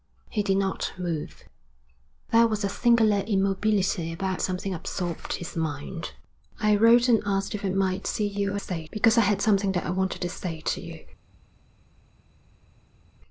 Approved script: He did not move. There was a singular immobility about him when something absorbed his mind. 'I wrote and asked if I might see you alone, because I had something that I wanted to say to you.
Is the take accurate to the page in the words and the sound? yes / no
no